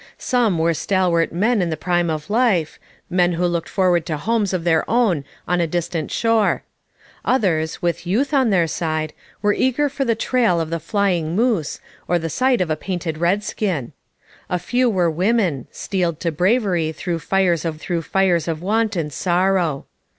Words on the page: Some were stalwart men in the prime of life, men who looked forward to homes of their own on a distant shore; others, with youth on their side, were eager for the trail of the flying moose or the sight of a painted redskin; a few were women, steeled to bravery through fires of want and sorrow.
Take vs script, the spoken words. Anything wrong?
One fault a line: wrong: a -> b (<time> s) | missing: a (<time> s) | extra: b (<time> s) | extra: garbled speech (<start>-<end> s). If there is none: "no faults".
extra: through fires of (17.8 s)